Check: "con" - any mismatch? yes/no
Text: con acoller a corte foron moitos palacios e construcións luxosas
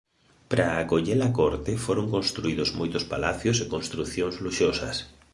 yes